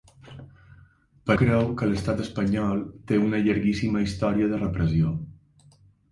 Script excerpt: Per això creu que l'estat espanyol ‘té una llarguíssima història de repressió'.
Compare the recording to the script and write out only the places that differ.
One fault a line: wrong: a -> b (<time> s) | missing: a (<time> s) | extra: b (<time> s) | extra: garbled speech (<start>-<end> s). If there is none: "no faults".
missing: això (1.4 s)